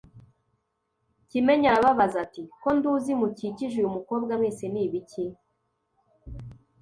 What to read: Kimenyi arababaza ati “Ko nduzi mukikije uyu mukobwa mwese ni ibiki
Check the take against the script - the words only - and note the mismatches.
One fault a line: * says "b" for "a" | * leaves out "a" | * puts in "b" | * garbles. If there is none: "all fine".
all fine